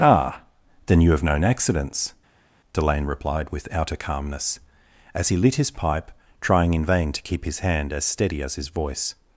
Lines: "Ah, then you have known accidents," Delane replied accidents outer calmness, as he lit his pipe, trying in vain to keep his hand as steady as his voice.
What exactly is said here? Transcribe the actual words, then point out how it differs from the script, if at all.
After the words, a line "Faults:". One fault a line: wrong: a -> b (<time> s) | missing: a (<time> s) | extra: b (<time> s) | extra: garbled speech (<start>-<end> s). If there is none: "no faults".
"Ah, then you have known accidents," Delane replied with outer calmness, as he lit his pipe, trying in vain to keep his hand as steady as his voice.
Faults:
wrong: accidents -> with (3.5 s)